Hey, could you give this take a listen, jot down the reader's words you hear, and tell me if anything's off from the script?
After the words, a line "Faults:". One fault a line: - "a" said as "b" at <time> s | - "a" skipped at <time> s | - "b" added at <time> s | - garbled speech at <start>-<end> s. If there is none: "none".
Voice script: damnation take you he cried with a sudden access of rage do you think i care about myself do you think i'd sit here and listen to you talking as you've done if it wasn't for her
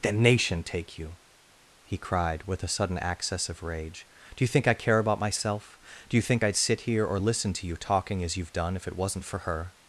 damnation take you he cried with a sudden access of rage do you think i care about myself do you think i'd sit here or listen to you talking as you've done if it wasn't for her
Faults:
- "and" said as "or" at 7.0 s